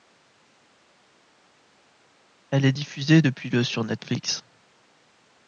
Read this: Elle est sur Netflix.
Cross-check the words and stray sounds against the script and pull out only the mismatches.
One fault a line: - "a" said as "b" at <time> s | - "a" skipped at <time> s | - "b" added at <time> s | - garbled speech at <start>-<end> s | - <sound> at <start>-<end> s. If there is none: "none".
- "diffusée depuis le" added at 2.7 s